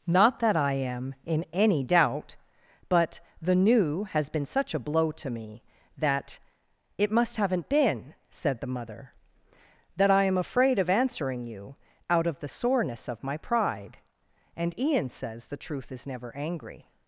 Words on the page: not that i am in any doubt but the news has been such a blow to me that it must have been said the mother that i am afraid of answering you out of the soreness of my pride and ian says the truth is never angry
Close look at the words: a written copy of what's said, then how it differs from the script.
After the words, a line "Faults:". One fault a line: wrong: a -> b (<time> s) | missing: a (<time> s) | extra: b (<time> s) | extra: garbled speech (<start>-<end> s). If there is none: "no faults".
not that i am in any doubt but the new has been such a blow to me that it must haven't been said the mother that i am afraid of answering you out of the soreness of my pride and ian says the truth is never angry
Faults:
wrong: news -> new (3.5 s)
wrong: have -> haven't (7.4 s)